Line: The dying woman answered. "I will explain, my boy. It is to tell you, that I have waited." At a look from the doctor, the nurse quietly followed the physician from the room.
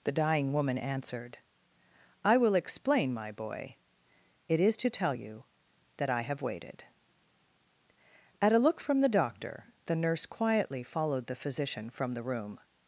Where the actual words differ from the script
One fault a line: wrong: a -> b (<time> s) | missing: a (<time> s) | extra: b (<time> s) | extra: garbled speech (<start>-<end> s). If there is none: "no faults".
no faults